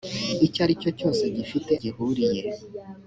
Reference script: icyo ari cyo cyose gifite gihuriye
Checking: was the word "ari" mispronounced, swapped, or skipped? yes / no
no